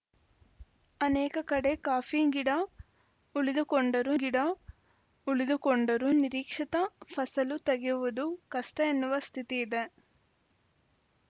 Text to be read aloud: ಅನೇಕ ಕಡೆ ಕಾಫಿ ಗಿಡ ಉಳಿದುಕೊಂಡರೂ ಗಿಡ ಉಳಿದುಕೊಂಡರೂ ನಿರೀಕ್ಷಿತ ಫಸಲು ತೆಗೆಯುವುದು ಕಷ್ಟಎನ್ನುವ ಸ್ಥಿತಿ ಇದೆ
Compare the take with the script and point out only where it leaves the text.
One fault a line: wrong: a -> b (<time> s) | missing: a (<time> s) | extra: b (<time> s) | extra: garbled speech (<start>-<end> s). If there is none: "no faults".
no faults